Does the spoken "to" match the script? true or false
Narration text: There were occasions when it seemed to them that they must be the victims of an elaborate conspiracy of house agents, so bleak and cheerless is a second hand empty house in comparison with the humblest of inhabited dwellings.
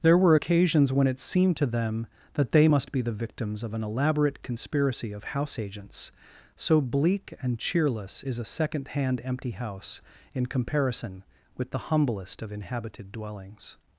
true